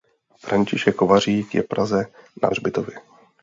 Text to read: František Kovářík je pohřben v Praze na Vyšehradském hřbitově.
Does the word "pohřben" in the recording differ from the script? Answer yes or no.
yes